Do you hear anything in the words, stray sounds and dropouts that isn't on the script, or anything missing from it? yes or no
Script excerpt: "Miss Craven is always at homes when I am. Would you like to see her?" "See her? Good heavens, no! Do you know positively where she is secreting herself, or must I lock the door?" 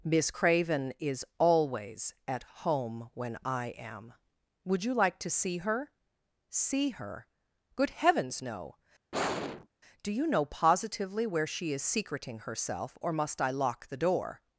yes